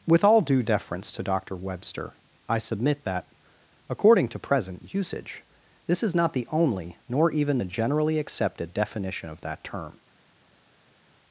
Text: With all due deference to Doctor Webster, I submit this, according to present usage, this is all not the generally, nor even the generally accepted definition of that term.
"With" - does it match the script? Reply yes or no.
yes